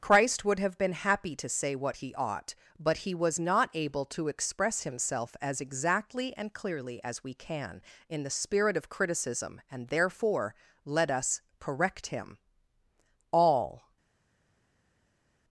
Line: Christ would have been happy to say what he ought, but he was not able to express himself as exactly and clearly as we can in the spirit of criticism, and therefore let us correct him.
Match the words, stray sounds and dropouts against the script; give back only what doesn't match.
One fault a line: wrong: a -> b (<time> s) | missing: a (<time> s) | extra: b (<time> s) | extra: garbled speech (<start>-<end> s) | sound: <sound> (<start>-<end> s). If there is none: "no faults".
extra: All (13.3 s)